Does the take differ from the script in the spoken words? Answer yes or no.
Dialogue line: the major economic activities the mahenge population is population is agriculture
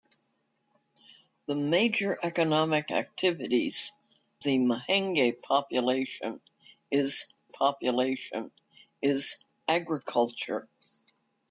no